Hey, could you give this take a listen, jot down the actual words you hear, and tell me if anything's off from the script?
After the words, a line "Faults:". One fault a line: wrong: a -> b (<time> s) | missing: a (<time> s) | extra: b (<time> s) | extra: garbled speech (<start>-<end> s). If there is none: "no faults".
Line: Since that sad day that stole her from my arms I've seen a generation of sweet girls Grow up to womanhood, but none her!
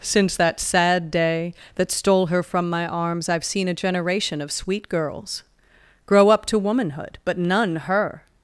Since that sad day that stole her from my arms I've seen a generation of sweet girls Grow up to womanhood, but none her!
Faults:
no faults